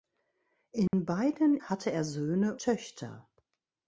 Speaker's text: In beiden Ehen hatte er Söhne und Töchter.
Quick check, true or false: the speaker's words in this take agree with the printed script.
false